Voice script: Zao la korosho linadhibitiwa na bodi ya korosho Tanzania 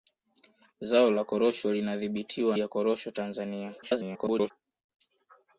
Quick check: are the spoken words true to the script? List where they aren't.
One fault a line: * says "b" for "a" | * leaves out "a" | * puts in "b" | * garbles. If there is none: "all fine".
* leaves out "na bodi"
* garbles